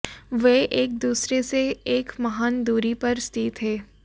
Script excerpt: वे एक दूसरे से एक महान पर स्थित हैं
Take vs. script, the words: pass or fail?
fail